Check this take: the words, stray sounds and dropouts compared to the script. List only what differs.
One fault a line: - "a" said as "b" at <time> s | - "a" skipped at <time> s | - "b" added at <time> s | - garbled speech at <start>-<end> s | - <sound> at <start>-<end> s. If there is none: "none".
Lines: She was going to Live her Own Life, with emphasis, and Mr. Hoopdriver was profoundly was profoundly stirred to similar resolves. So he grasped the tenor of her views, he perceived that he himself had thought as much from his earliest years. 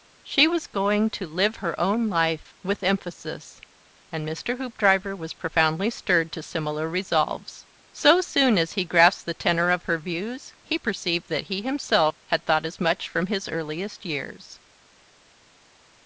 - "was profoundly" skipped at 5.9 s
- "soon as" added at 8.2 s